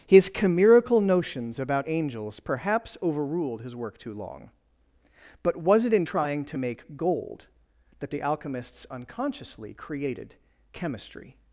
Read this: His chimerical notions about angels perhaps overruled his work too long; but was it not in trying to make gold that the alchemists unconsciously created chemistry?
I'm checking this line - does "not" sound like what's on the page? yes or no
no